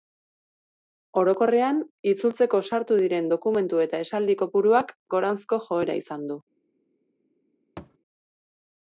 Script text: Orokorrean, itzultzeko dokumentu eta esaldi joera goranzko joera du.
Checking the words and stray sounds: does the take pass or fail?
fail